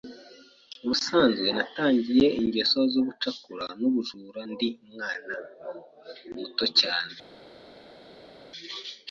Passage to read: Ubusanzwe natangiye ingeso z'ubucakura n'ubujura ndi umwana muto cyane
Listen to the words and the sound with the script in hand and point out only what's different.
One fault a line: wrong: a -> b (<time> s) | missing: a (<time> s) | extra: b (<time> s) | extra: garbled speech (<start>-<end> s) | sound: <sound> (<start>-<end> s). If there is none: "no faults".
no faults